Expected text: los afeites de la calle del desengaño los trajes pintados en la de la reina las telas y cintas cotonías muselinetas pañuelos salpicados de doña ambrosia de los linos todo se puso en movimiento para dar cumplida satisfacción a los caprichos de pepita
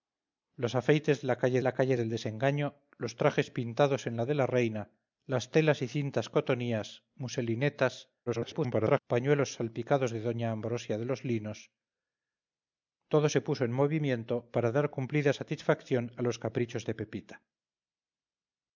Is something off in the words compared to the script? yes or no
yes